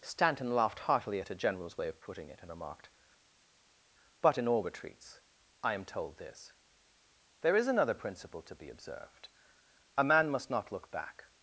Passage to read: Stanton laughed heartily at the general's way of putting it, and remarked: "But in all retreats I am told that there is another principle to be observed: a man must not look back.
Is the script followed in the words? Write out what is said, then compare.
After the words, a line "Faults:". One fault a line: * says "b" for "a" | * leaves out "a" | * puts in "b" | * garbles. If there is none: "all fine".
Stanton laughed heartily at a general's way of putting it, and remarked: "But in all retreats I am told this there is another principle to be observed: a man must not look back.
Faults:
* says "a" for "the"
* says "this" for "that"